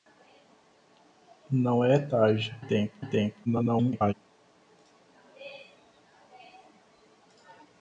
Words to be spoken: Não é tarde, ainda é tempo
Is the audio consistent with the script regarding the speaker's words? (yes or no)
no